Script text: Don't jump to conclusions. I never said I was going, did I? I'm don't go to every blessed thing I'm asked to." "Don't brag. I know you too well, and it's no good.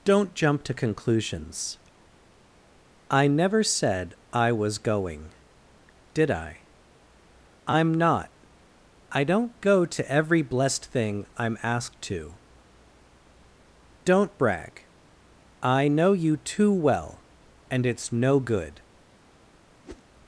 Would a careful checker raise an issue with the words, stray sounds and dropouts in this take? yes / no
yes